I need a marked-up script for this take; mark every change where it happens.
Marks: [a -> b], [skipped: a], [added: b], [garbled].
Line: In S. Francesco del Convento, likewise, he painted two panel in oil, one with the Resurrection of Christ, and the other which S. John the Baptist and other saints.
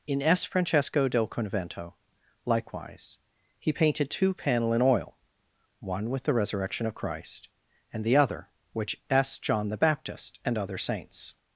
In S. Francesco del Convento, likewise, he painted two panel in oil, one with the Resurrection of Christ, and the other which S. John the Baptist and other saints.